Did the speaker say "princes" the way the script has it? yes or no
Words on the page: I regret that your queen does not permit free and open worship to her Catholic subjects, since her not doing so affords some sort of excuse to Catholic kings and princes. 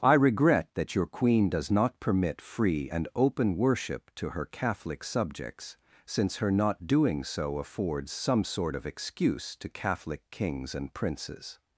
yes